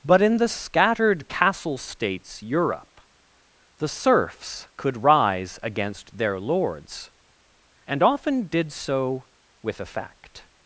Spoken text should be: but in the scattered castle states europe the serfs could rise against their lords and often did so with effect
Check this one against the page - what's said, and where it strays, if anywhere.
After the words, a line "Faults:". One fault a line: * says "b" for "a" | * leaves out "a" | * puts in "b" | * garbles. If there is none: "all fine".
but in the scattered castle states europe the serfs could rise against their lords and often did so with effect
Faults:
all fine